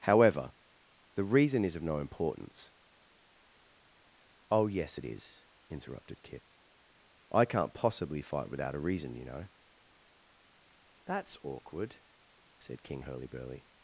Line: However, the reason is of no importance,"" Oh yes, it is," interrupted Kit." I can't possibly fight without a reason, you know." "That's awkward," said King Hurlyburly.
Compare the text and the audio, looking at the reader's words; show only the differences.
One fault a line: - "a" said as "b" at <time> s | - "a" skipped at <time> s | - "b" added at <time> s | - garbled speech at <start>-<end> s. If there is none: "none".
none